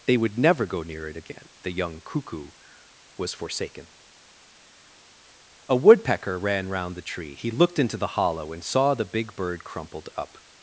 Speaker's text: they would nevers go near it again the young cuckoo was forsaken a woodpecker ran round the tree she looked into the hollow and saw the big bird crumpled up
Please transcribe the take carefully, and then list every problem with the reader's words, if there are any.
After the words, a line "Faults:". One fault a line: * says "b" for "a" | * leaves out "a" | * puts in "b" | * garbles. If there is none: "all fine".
they would never go near it again the young cuckoo was forsaken a woodpecker ran round the tree he looked into the hollow and saw the big bird crumpled up
Faults:
* says "never" for "nevers"
* says "he" for "she"